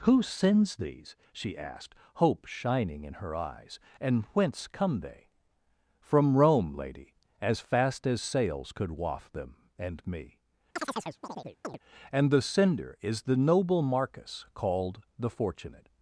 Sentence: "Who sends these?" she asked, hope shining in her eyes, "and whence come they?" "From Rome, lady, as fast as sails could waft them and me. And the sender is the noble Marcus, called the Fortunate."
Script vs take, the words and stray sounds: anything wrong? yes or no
yes